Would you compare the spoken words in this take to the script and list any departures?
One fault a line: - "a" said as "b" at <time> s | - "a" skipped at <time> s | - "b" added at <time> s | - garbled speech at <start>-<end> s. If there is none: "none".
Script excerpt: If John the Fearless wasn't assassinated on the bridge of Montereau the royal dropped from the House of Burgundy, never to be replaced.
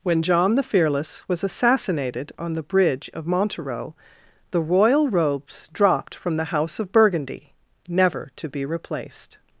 - "If" said as "When" at 0.0 s
- "wasn't" said as "was" at 1.3 s
- "robes" added at 5.1 s